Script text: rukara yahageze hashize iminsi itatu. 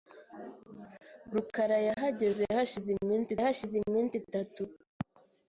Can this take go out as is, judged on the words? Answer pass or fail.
fail